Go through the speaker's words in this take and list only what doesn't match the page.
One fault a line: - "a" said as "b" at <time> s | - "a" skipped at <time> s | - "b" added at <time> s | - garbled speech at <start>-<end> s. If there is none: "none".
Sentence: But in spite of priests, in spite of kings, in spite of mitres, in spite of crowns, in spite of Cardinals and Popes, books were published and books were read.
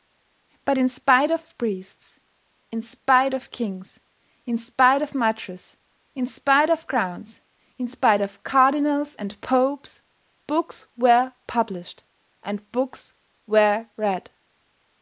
none